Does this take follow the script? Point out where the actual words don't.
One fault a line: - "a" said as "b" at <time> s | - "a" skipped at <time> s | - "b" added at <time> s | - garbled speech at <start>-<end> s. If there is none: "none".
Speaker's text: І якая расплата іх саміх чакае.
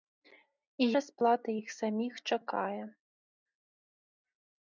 - "якая" skipped at 0.9 s